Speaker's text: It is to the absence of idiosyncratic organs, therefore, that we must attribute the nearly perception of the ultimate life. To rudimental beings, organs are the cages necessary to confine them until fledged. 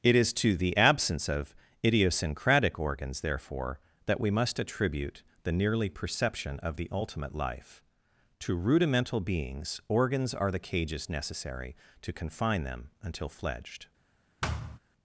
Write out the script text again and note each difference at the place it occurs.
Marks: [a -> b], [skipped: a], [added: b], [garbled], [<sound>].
It is to the absence of idiosyncratic organs, therefore, that we must attribute the nearly perception of the ultimate life. To rudimental beings, organs are the cages necessary to confine them until fledged. [thud]